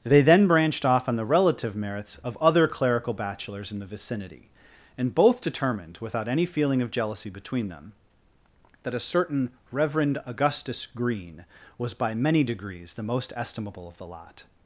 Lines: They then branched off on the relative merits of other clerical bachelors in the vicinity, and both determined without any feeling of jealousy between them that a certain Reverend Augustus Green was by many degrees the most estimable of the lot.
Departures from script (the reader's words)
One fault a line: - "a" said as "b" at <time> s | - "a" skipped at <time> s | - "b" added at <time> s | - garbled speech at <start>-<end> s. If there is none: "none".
none